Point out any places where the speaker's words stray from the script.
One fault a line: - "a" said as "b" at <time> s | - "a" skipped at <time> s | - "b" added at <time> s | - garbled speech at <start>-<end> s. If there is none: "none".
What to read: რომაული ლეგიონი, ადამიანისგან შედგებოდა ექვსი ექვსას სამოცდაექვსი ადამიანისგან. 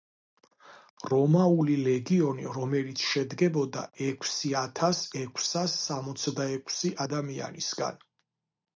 - "ადამიანისგან" said as "რომელიც" at 2.5 s
- "ათას" added at 4.7 s